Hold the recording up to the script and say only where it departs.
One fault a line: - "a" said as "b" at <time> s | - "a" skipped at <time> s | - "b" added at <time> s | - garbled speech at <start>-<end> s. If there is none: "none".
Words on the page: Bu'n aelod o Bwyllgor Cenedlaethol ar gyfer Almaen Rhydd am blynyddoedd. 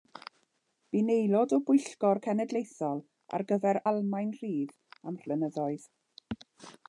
none